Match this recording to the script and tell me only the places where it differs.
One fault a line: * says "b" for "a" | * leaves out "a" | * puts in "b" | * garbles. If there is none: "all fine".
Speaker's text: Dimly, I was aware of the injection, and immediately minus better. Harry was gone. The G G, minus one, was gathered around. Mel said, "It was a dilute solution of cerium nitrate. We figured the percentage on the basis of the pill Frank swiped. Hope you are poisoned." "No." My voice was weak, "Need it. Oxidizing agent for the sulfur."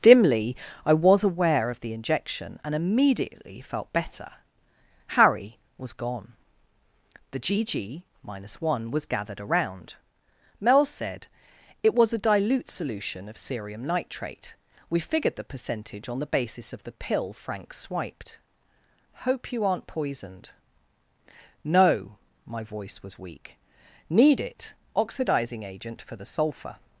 * says "felt" for "minus"
* says "aren't" for "are"